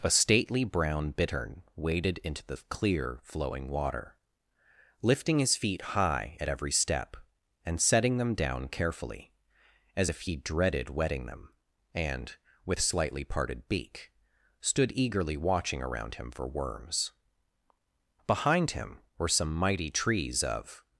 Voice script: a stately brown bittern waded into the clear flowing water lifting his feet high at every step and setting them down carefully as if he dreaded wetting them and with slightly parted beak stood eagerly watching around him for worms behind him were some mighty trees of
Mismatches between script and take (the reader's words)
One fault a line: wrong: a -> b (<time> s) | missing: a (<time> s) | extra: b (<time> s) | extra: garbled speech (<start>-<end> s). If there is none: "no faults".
no faults